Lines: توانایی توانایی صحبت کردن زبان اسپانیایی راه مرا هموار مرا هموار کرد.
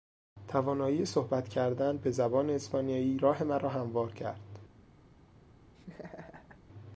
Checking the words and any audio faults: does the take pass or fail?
fail